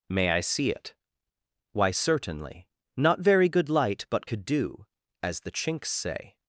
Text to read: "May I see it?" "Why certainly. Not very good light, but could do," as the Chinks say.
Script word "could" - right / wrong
right